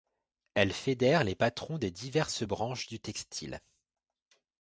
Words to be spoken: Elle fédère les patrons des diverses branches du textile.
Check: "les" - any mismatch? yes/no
no